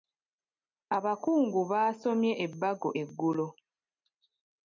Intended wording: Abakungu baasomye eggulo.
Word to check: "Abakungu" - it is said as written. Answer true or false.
true